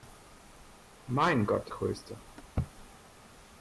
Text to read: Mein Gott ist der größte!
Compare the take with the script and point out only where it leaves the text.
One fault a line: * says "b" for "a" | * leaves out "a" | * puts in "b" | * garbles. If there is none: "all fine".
* leaves out "ist der"